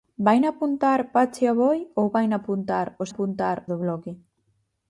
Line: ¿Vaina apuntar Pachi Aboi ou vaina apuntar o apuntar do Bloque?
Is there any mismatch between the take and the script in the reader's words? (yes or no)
no